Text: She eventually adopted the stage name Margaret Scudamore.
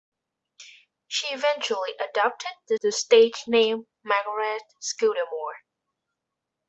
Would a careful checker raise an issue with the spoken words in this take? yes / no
yes